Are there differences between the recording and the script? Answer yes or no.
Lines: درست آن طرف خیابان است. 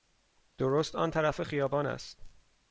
no